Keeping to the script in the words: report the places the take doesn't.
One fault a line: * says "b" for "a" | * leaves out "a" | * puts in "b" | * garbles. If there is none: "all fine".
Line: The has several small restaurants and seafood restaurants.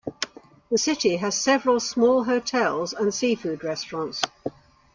* puts in "city"
* says "hotels" for "restaurants"